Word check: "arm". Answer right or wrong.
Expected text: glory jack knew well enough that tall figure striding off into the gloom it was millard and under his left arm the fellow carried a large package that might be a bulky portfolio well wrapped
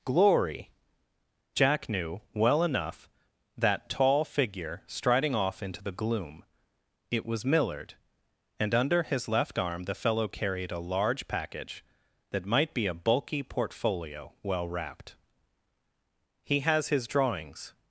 right